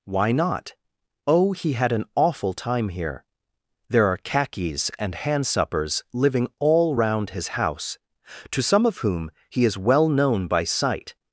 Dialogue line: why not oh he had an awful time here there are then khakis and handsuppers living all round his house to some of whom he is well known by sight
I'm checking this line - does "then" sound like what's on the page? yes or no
no